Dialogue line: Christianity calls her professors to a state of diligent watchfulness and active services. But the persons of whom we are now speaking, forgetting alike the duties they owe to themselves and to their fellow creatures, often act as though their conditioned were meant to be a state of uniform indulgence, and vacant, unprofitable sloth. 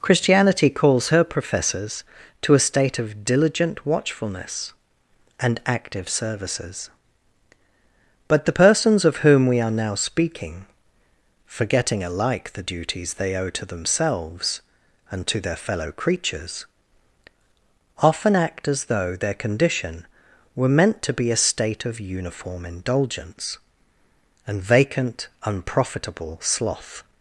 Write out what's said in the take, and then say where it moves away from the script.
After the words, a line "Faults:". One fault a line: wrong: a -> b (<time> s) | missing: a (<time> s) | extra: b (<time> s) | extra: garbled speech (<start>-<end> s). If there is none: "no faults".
Christianity calls her professors to a state of diligent watchfulness and active services. But the persons of whom we are now speaking, forgetting alike the duties they owe to themselves and to their fellow creatures, often act as though their condition were meant to be a state of uniform indulgence, and vacant, unprofitable sloth.
Faults:
wrong: conditioned -> condition (19.3 s)